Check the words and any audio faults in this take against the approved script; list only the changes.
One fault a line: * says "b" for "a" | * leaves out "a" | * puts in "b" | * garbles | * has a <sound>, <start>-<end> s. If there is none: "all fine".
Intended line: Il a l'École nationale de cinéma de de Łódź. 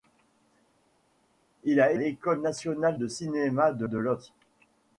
all fine